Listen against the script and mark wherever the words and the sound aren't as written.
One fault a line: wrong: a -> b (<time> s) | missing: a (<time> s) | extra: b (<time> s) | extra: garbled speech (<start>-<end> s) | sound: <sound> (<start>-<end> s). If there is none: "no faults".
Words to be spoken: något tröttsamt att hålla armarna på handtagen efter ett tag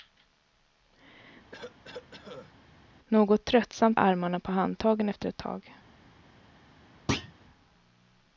sound: cough (1.5-2.5 s)
missing: att hålla (4.0 s)
sound: thud (7.1-7.3 s)